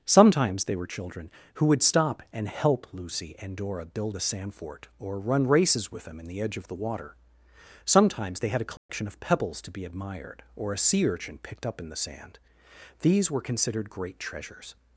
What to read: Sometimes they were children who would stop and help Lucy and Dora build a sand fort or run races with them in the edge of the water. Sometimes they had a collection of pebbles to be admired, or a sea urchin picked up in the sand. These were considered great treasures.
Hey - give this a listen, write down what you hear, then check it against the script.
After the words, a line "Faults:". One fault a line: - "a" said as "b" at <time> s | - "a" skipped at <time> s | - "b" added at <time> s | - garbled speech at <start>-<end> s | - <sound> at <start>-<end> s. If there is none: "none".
Sometimes they were children who would stop and help Lucy and Dora build a sand fort or run races with them in the edge of the water. Sometimes they had a collection of pebbles to be admired, or a sea urchin picked up in the sand. These were considered great treasures.
Faults:
- dropout at 8.8-8.9 s